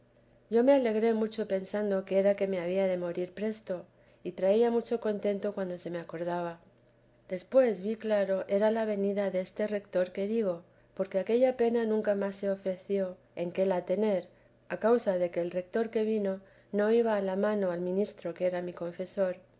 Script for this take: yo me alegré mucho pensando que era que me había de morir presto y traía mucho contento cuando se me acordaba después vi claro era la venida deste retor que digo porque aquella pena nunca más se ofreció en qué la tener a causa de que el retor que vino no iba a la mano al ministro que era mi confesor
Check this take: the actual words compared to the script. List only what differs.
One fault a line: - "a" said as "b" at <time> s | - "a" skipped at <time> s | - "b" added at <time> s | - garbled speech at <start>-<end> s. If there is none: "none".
none